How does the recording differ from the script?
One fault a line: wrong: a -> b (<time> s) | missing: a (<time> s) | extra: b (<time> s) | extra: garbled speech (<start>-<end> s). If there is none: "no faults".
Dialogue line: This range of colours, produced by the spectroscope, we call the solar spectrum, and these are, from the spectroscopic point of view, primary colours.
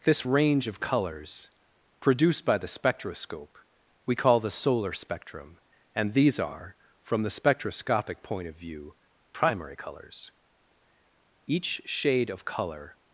extra: Each shade of colour (11.5 s)